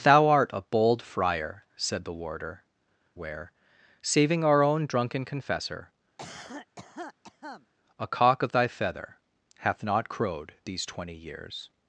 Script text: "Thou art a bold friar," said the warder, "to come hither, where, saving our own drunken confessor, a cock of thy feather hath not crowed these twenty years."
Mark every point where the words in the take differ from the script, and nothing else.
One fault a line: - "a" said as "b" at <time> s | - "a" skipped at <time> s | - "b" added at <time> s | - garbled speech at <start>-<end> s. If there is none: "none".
- "to come hither" skipped at 2.6 s